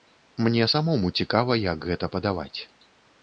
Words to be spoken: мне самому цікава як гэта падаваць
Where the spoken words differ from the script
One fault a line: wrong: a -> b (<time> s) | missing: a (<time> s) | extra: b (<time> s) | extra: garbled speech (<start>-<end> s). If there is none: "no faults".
no faults